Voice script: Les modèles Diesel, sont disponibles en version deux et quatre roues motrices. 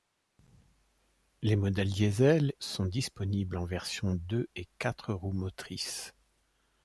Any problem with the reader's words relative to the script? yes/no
no